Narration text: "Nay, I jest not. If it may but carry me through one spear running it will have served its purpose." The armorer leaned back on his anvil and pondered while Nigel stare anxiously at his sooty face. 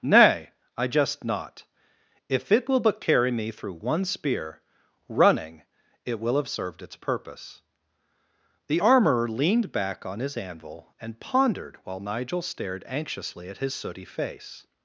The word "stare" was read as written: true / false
false